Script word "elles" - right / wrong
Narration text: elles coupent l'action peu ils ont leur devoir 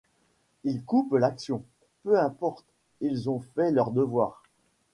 wrong